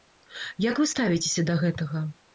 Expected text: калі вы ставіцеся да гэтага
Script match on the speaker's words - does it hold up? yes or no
no